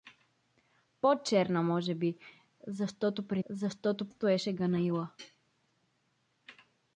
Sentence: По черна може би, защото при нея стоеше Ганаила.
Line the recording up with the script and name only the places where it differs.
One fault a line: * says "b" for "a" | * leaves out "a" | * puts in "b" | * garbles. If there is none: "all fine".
* says "защото" for "нея"